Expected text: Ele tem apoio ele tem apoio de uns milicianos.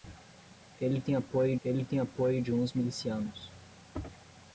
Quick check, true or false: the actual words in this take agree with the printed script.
true